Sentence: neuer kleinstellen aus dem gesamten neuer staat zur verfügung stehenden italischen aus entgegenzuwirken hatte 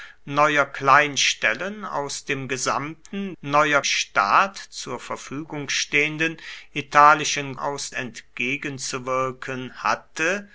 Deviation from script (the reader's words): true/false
false